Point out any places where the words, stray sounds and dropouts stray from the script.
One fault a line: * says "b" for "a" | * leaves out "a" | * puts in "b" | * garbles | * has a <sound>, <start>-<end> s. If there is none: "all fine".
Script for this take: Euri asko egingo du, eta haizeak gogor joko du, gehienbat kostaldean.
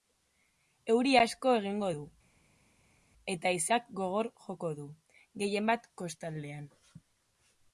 all fine